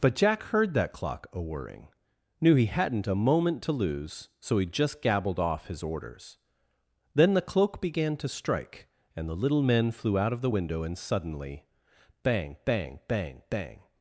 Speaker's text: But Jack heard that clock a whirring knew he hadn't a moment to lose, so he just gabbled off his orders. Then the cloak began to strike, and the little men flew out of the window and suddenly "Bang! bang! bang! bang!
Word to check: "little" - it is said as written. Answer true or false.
true